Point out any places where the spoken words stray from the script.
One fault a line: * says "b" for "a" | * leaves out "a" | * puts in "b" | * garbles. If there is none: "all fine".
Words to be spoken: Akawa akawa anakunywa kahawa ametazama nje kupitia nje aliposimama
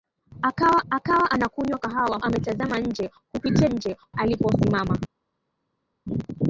all fine